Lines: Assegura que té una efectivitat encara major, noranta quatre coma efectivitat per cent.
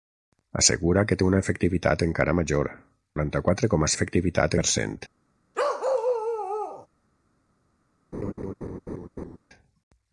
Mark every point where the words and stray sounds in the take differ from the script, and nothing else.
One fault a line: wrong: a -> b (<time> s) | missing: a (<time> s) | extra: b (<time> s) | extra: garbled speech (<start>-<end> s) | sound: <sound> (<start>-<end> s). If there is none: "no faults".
sound: bark (5.5-6.9 s)
sound: laugh (8.1-9.4 s)